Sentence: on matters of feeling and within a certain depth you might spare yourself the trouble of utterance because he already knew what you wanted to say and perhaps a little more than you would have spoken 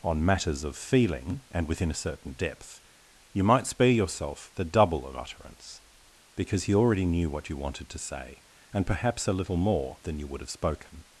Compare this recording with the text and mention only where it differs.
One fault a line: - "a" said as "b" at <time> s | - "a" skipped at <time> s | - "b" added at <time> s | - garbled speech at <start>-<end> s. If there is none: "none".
- "trouble" said as "double" at 4.7 s